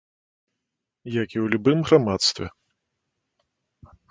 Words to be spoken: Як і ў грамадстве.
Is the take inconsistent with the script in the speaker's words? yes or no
yes